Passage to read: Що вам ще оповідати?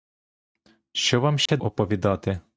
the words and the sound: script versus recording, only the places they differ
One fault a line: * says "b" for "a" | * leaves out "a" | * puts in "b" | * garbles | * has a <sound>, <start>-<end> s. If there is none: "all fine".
* has a dropout, 1.5-1.5 s